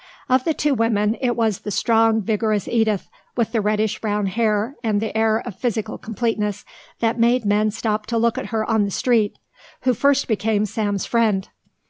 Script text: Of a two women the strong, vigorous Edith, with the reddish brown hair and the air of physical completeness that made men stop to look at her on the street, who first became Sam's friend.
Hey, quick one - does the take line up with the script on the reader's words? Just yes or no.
no